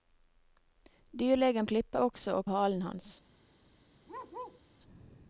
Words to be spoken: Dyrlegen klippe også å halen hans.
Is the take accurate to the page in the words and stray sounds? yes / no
no